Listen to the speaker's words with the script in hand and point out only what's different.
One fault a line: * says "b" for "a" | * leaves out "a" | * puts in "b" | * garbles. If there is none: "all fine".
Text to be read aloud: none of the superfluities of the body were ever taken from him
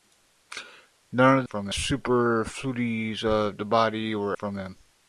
* says "from" for "the"
* leaves out "ever taken"